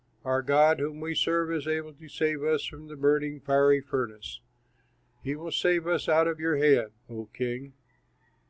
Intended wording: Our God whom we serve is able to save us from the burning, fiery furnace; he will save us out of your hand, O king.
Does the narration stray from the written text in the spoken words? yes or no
no